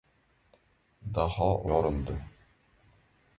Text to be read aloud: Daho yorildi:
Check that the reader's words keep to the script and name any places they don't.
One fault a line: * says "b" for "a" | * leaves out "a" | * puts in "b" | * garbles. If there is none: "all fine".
all fine